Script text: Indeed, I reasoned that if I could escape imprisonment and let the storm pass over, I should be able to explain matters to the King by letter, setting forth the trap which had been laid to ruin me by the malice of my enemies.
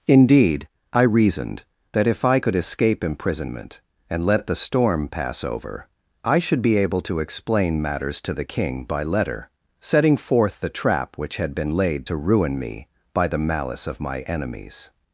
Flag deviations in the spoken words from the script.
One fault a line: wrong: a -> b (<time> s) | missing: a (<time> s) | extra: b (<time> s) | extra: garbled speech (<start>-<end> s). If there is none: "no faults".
no faults